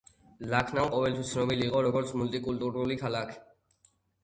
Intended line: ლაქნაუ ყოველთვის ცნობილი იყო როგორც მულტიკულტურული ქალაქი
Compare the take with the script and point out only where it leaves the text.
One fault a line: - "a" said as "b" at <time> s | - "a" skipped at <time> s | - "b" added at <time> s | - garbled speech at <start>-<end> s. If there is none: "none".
none